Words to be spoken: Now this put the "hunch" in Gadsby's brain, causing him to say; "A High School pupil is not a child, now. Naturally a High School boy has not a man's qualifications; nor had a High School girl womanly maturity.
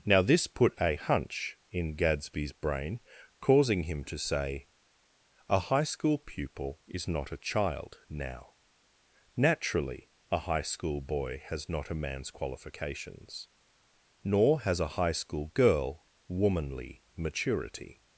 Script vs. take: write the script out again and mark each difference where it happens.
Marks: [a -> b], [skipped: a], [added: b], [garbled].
Now this put [the -> a] "hunch" in Gadsby's brain, causing him to say; "A High School pupil is not a child, now. Naturally a High School boy has not a man's qualifications; nor [had -> has] a High School girl womanly maturity.